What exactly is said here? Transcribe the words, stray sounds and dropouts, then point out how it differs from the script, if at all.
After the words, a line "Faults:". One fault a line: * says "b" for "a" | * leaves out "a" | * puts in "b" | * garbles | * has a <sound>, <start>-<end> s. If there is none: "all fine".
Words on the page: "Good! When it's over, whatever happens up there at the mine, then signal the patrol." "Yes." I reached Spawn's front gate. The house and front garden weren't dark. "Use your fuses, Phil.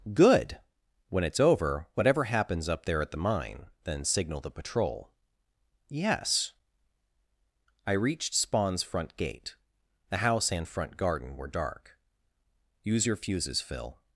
"Good! When it's over, whatever happens up there at the mine, then signal the patrol." "Yes." I reached Spawn's front gate. The house and front garden were dark. "Use your fuses, Phil.
Faults:
* says "were" for "weren't"